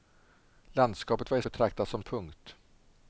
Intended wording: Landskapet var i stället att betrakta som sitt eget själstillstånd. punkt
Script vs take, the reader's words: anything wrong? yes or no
yes